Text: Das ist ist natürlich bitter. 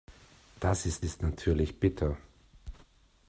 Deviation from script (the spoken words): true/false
false